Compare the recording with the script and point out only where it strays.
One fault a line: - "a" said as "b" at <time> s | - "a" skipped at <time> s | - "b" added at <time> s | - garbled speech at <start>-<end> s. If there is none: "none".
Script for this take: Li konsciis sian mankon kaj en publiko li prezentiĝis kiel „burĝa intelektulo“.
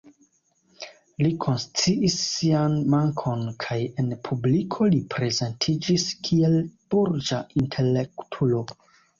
none